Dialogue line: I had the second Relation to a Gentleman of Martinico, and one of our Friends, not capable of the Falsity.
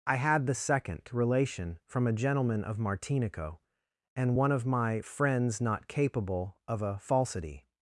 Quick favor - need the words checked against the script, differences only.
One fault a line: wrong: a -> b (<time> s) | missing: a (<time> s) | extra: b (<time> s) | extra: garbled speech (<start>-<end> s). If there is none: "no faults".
wrong: to -> from (1.9 s)
wrong: our -> my (4.7 s)
wrong: the -> a (6.8 s)